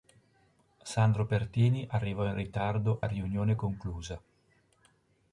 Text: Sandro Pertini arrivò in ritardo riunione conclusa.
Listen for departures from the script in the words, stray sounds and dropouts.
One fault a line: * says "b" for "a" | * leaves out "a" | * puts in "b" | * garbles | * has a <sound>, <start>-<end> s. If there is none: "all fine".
all fine